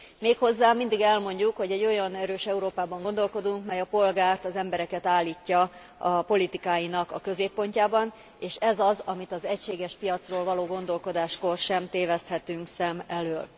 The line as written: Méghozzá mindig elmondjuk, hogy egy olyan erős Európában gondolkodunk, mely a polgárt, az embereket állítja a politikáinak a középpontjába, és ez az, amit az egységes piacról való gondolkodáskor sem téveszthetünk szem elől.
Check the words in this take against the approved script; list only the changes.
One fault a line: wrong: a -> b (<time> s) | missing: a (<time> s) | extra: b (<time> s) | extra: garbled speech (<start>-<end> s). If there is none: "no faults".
no faults